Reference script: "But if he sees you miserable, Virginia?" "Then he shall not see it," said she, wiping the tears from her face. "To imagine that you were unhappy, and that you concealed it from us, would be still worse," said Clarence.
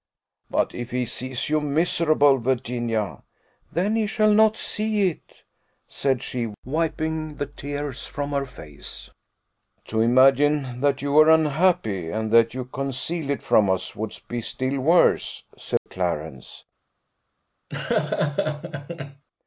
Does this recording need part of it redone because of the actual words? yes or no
no